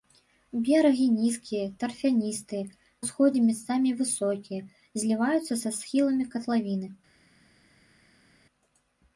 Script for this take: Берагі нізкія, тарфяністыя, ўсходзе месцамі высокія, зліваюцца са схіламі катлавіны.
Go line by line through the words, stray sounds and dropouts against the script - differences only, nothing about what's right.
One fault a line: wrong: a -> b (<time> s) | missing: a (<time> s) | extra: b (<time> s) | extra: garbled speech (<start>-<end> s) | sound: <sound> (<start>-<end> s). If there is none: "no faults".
no faults